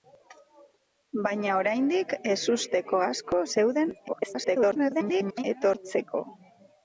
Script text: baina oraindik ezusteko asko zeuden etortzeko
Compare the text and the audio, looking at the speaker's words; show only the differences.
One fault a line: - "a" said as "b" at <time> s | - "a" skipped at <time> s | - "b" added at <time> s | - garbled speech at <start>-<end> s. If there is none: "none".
- garbled speech at 4.1-5.4 s